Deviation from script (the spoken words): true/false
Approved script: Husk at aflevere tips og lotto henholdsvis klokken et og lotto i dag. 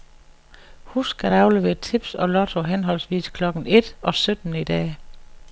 true